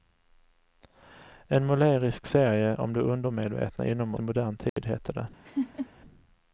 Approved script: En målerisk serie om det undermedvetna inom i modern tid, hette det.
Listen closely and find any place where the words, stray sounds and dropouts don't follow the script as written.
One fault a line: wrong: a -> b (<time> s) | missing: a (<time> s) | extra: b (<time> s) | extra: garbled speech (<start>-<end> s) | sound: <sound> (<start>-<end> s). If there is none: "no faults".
sound: dropout (4.7-4.8 s)
sound: laugh (5.4-5.9 s)